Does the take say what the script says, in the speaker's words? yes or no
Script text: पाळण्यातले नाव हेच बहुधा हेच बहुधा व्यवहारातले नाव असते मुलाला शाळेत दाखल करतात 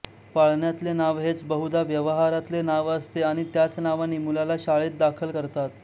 no